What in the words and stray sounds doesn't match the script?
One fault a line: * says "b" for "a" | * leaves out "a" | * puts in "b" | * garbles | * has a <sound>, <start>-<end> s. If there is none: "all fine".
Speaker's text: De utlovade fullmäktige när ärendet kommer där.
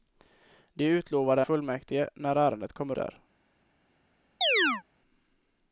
* has a chirp, 4.4-4.8 s